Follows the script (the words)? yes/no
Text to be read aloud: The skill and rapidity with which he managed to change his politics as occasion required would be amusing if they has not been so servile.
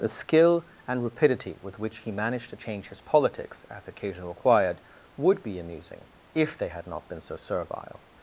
no